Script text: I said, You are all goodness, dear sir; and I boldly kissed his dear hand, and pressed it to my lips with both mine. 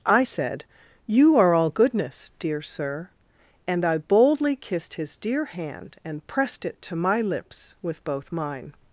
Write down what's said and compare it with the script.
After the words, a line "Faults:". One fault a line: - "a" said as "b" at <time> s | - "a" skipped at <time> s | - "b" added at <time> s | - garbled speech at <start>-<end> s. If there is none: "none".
I said, You are all goodness, dear sir; and I boldly kissed his dear hand, and pressed it to my lips with both mine.
Faults:
none